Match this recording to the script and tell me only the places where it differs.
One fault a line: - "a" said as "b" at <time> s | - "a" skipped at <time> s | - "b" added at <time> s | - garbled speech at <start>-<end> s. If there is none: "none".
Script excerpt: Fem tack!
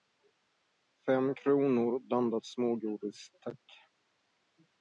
- "kronor blandat smågodis" added at 1.4 s